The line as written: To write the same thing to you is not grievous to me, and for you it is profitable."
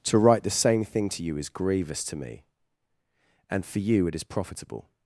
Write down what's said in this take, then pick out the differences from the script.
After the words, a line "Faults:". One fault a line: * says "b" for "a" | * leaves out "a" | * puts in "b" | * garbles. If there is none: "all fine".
To write the same thing to you is grievous to me, and for you it is profitable."
Faults:
* leaves out "not"